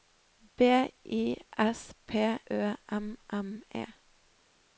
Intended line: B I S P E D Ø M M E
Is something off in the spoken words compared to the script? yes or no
yes